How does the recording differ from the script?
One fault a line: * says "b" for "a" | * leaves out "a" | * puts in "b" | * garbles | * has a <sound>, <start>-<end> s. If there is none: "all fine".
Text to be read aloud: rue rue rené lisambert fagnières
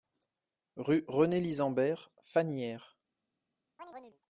* leaves out "rue"
* has a chirp, 3.8-4.2 s